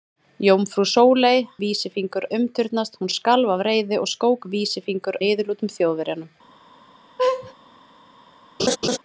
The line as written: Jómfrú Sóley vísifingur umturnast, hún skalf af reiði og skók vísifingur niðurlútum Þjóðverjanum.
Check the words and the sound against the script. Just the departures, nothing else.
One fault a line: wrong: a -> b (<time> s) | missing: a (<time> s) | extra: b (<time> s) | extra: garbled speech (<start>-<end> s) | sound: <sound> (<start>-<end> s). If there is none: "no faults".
sound: laugh (7.2-7.5 s)
sound: laugh (8.6-9.0 s)